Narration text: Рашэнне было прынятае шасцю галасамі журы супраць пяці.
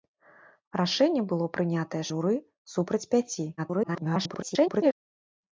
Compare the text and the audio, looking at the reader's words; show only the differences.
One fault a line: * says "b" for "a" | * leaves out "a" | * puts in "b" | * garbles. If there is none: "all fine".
* leaves out "шасцю галасамі"
* garbles